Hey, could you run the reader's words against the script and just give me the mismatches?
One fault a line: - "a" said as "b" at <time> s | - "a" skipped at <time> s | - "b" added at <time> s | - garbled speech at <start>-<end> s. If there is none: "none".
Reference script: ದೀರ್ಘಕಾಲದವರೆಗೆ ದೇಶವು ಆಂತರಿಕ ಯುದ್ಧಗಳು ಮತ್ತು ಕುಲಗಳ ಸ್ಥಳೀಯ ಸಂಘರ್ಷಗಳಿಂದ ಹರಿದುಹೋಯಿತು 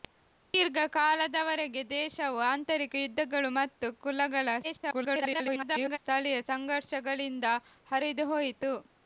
- garbled speech at 4.6-6.0 s